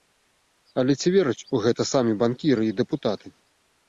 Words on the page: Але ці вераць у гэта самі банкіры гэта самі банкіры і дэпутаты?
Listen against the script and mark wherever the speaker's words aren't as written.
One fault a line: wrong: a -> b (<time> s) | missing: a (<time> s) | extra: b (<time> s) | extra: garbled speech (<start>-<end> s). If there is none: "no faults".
missing: гэта самі банкіры (2.6 s)